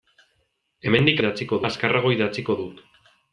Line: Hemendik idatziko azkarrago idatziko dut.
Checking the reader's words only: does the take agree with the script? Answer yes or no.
yes